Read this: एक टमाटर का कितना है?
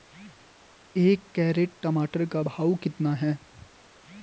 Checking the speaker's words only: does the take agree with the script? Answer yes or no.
no